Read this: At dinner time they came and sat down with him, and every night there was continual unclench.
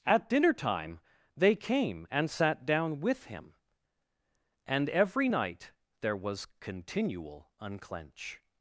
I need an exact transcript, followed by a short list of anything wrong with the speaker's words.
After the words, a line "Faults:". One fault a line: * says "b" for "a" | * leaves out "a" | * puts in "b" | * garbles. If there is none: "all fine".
At dinner time they came and sat down with him, and every night there was continual unclench.
Faults:
all fine